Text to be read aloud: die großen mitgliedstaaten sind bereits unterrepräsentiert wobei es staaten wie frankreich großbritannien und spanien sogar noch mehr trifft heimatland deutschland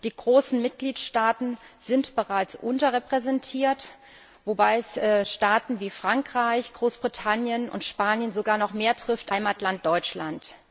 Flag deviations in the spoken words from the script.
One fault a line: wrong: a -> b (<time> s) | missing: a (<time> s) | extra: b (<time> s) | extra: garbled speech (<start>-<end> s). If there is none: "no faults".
no faults